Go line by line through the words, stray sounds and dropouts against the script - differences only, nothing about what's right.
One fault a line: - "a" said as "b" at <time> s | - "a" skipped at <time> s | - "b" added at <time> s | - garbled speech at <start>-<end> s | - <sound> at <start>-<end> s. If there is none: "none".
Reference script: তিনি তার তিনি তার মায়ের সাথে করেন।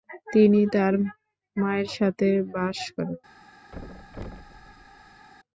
- "তিনি তার" skipped at 0.9 s
- "বাস" added at 2.5 s
- thud at 3.7-5.3 s